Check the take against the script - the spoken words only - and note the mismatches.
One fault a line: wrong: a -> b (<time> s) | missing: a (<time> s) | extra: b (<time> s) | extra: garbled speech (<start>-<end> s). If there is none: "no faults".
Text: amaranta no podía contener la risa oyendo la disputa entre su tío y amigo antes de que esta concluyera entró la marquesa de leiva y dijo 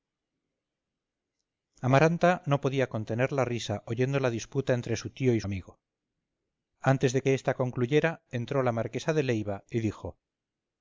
no faults